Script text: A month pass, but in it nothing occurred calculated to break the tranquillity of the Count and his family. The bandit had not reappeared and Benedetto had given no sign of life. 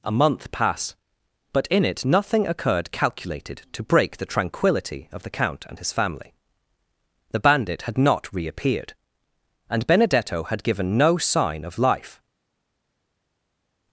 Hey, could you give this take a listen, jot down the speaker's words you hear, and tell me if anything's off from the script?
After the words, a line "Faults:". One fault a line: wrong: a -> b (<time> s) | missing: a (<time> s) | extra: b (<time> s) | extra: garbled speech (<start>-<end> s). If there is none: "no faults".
A month pass, but in it nothing occurred calculated to break the tranquillity of the Count and his family. The bandit had not reappeared and Benedetto had given no sign of life.
Faults:
no faults